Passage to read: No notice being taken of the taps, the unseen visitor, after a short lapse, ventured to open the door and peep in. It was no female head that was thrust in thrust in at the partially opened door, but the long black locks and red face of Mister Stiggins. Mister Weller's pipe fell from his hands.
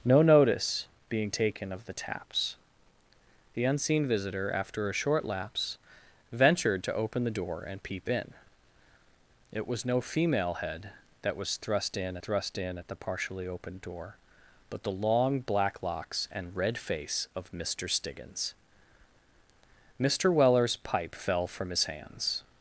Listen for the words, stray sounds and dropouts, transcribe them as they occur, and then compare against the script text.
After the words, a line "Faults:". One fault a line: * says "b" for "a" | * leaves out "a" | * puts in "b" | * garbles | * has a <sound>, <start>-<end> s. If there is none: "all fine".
No notice being taken of the taps, the unseen visitor, after a short lapse, ventured to open the door and peep in. It was no female head that was thrust in thrust in at the partially opened door, but the long black locks and red face of Mister Stiggins. Mister Weller's pipe fell from his hands.
Faults:
all fine